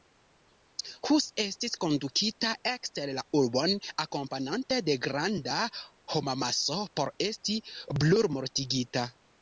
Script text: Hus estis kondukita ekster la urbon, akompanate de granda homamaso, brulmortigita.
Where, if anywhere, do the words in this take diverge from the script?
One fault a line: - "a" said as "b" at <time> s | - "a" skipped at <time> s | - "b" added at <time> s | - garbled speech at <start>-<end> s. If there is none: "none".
- "por esti" added at 7.0 s